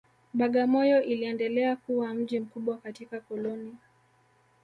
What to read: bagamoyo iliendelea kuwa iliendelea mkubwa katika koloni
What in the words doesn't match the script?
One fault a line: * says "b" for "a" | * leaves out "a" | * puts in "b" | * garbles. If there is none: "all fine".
* says "mji" for "iliendelea"